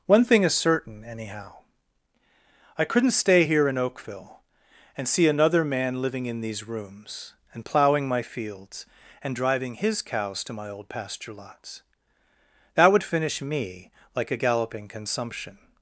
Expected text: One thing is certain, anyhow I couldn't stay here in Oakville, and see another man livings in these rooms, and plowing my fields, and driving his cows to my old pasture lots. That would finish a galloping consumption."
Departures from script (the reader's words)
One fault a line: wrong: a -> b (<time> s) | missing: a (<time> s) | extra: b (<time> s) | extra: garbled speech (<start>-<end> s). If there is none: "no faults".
wrong: livings -> living (6.0 s)
extra: me like (13.4 s)